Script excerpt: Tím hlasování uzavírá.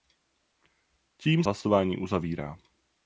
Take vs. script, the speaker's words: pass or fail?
pass